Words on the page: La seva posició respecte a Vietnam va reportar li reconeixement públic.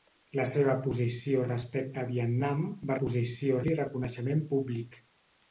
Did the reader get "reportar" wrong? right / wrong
wrong